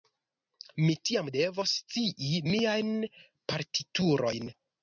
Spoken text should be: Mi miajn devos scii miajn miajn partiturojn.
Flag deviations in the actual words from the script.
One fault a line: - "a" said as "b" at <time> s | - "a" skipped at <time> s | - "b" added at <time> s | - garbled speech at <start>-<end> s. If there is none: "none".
- "miajn" said as "tiam" at 1.1 s
- "miajn" skipped at 2.9 s